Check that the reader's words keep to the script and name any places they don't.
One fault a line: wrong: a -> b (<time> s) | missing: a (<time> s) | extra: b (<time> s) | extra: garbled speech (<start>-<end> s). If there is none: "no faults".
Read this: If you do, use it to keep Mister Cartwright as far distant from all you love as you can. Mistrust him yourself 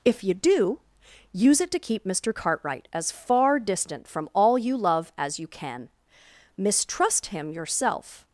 no faults